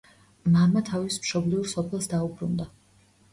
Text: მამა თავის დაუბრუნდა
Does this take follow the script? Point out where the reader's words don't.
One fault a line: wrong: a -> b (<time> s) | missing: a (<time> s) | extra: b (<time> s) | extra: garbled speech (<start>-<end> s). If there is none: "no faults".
extra: მშობლიურ სოფელს (1.2 s)